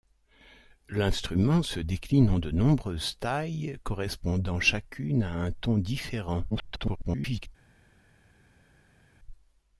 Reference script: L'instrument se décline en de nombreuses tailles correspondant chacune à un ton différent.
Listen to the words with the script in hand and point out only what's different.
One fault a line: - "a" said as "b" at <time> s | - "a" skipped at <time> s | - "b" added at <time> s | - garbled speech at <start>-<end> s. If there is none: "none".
- garbled speech at 6.5-7.5 s